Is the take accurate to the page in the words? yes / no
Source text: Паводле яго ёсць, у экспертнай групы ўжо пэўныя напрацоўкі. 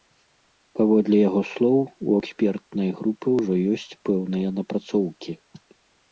no